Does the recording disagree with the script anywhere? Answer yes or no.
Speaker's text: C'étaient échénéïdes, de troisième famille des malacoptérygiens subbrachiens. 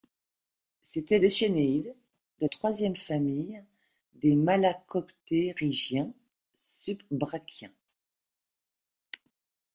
no